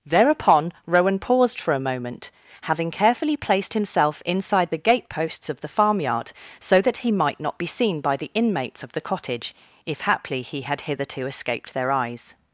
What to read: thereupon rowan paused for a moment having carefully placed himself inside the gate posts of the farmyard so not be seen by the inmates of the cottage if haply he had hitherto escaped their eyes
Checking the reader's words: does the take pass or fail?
fail